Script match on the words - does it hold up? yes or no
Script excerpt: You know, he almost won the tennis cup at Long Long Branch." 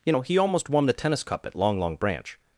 yes